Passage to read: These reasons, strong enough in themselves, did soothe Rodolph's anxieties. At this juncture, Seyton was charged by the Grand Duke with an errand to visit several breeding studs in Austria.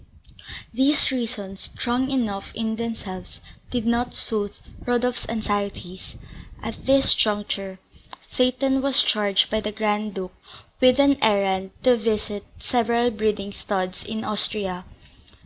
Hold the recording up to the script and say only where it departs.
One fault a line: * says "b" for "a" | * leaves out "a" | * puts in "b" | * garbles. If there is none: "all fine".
* puts in "not"